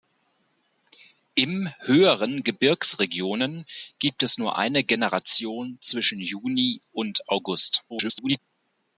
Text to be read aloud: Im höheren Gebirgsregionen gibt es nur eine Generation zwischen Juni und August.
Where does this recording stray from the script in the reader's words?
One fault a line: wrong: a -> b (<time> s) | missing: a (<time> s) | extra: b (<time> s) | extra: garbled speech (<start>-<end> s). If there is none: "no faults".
extra: garbled speech (7.9-8.4 s)